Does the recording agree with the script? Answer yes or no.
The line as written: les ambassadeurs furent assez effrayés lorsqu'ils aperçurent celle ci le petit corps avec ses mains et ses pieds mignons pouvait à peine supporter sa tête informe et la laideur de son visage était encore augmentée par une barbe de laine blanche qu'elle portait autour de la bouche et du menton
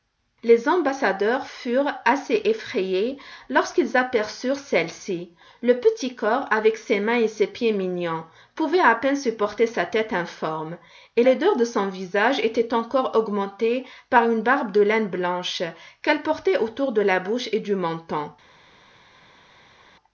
no